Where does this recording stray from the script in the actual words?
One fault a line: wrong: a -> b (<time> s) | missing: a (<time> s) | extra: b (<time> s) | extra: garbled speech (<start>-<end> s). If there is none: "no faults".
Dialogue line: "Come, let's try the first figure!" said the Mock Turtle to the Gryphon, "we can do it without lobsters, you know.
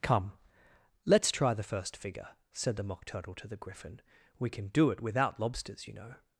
no faults